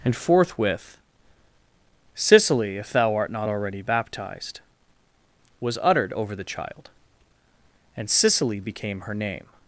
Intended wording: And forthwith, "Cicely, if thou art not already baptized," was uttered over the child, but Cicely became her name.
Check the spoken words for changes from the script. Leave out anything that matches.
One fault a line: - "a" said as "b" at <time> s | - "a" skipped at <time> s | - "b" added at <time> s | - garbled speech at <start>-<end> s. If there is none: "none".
- "but" said as "and" at 8.0 s